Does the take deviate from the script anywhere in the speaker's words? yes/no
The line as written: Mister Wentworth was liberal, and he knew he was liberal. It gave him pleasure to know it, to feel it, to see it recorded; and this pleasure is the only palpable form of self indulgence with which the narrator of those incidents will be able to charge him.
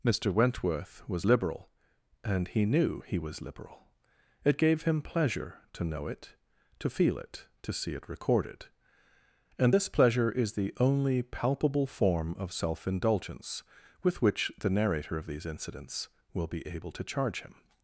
yes